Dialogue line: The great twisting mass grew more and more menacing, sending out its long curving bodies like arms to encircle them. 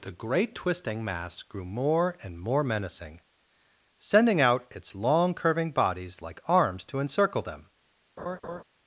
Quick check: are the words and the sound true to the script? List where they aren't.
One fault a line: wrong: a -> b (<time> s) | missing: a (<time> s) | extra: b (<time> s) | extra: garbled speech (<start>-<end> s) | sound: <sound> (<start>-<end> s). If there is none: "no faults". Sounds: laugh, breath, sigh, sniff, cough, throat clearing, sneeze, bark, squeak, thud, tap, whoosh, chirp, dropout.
sound: laugh (8.2-8.6 s)